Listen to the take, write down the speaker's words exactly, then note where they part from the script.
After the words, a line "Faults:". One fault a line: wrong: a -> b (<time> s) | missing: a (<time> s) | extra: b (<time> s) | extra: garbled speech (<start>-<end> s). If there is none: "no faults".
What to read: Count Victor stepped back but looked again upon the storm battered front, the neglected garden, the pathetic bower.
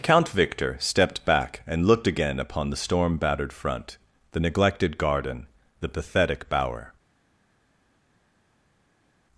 Count Victor stepped back and looked again upon the storm battered front, the neglected garden, the pathetic bower.
Faults:
wrong: but -> and (1.7 s)